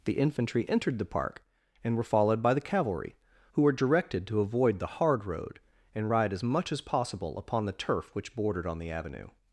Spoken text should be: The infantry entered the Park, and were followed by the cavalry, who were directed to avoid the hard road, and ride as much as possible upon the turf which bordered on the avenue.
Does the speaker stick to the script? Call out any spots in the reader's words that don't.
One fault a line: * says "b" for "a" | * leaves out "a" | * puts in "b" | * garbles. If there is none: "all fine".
all fine